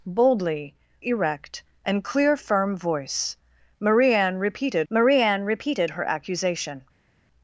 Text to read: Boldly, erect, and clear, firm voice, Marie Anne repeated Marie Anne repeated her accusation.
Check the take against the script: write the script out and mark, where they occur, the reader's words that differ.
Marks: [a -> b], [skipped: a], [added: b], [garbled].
Boldly, erect, and clear, firm voice, Marie Anne repeated Marie Anne repeated her accusation.